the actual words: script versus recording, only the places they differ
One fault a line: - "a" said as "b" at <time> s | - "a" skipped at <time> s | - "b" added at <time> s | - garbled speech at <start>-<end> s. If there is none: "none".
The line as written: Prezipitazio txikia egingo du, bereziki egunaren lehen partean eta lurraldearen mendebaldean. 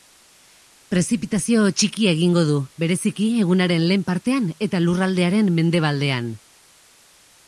none